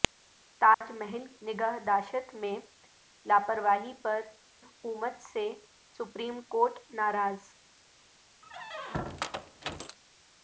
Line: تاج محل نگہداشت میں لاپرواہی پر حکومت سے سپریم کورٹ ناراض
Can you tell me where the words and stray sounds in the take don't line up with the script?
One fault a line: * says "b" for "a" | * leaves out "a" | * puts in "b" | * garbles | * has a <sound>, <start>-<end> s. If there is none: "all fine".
* has a dropout, 0.7-0.8 s
* has a squeak, 8.4-10.0 s